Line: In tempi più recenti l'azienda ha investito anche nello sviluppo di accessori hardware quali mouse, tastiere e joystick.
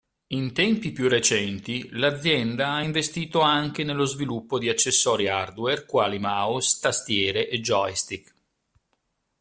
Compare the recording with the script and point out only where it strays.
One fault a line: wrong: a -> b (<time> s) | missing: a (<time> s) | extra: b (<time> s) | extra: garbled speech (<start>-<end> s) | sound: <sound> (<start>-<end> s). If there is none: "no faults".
no faults